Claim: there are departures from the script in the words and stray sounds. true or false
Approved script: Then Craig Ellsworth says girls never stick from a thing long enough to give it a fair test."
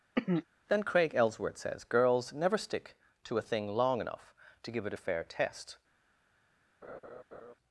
true